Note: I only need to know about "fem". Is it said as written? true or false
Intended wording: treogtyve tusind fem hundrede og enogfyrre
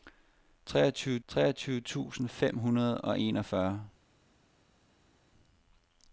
true